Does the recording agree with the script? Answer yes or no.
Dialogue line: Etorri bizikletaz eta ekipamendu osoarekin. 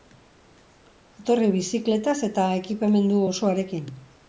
yes